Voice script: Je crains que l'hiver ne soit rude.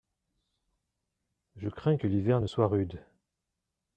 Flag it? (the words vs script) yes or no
no